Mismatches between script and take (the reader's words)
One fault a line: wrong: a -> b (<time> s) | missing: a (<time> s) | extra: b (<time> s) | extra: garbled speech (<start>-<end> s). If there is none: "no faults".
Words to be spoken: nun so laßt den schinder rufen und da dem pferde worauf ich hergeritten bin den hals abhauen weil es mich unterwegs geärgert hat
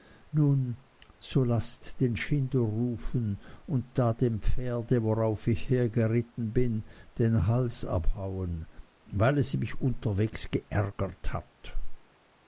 no faults